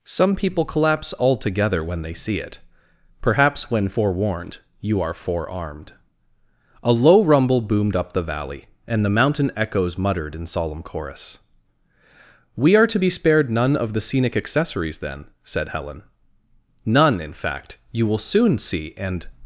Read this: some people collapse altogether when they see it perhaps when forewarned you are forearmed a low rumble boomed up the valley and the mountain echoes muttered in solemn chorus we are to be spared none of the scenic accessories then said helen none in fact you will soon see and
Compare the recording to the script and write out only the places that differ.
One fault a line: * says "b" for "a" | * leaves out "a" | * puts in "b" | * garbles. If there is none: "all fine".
all fine